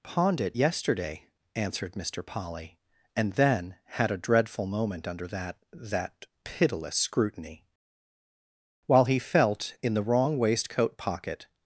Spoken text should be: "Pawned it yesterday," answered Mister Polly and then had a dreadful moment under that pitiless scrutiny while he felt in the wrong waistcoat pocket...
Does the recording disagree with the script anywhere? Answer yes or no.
yes